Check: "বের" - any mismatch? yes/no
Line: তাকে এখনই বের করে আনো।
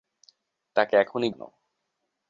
yes